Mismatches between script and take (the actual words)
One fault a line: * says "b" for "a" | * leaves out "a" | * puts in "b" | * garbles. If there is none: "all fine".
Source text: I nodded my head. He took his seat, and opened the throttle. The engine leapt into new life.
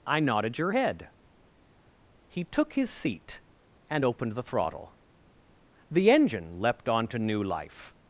* says "your" for "my"
* says "onto" for "into"